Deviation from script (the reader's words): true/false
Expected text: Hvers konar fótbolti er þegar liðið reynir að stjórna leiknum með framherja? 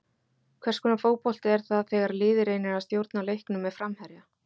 true